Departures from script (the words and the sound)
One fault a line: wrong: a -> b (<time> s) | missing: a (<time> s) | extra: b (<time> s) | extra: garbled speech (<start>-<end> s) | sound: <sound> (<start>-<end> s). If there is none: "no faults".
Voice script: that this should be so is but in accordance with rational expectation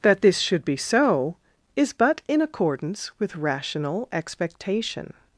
no faults